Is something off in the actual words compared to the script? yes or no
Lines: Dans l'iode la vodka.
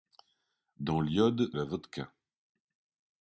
no